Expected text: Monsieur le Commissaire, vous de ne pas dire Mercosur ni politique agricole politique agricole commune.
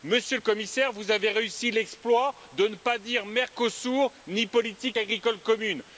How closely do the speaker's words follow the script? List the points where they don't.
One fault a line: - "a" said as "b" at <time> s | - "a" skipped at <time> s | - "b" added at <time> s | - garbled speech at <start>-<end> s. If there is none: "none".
- "avez réussi l'exploit" added at 1.1 s
- "politique agricole" skipped at 5.4 s